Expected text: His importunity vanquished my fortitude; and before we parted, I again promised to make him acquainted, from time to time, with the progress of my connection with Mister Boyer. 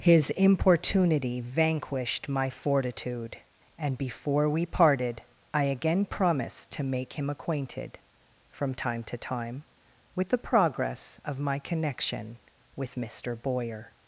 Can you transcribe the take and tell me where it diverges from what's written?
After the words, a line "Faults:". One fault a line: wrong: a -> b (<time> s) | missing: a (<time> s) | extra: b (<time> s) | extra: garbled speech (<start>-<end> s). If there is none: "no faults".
His importunity vanquished my fortitude; and before we parted, I again promised to make him acquainted, from time to time, with the progress of my connection with Mister Boyer.
Faults:
no faults